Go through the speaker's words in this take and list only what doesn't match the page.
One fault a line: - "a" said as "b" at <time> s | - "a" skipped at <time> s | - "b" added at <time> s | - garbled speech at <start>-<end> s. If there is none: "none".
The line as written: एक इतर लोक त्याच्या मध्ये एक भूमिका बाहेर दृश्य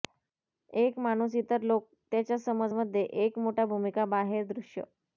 - "माणूस" added at 1.0 s
- "समज" added at 2.4 s
- "मोठा" added at 3.4 s